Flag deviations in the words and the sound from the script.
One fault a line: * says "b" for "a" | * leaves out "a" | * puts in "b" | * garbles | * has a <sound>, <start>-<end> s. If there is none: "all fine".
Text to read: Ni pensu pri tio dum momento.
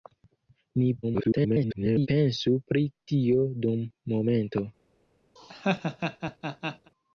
* garbles
* has a laugh, 5.4-6.9 s